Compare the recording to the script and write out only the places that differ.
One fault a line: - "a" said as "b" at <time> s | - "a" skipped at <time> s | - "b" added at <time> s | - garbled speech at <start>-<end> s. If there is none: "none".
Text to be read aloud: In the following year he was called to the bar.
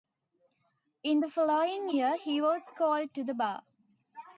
none